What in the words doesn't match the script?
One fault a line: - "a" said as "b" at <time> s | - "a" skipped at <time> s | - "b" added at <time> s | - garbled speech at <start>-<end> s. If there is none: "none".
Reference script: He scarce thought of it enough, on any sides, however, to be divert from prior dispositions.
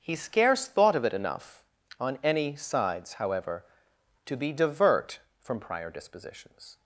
none